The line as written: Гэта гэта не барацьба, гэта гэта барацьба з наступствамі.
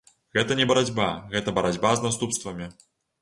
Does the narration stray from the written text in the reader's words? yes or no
yes